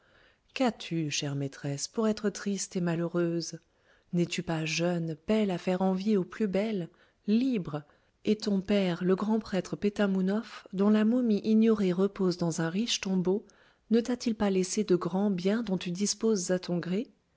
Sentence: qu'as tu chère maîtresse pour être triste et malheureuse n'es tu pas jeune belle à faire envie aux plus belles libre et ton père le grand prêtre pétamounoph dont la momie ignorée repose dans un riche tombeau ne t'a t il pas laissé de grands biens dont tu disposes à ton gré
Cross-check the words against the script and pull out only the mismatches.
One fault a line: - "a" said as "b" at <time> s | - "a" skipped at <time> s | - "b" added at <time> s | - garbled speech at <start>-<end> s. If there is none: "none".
none